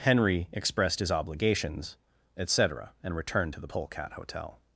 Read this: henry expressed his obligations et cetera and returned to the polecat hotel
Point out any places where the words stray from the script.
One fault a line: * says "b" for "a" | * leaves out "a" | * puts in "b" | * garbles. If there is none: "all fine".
all fine